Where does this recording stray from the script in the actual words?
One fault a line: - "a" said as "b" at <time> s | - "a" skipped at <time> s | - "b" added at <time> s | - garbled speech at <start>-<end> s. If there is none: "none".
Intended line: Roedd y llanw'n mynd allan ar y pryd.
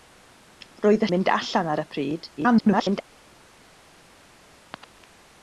- "llanw'n" skipped at 1.1 s
- garbled speech at 2.4-3.0 s